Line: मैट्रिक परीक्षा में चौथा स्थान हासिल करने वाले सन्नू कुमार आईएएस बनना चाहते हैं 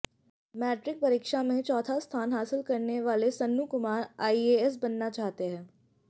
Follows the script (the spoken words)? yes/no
yes